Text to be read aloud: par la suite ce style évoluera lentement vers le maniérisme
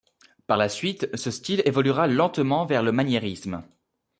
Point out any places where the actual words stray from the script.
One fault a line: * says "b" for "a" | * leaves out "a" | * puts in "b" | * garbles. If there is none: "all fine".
all fine